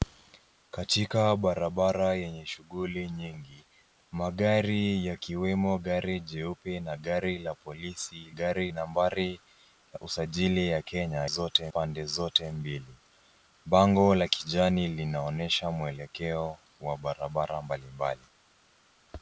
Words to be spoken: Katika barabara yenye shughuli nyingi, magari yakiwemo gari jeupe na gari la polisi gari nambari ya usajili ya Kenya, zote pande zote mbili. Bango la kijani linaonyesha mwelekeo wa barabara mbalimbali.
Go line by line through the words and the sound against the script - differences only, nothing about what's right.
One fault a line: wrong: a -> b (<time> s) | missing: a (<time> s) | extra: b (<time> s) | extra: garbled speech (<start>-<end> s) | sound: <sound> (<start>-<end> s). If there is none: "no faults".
no faults